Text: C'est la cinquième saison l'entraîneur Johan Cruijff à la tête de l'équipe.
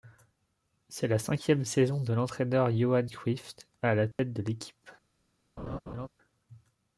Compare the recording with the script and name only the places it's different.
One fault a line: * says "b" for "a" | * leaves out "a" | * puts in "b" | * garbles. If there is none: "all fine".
* puts in "de"